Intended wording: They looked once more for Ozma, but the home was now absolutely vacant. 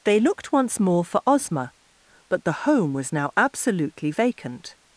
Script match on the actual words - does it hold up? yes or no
yes